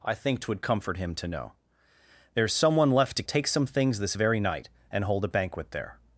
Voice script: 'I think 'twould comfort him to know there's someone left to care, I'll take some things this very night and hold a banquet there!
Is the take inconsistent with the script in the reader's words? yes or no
yes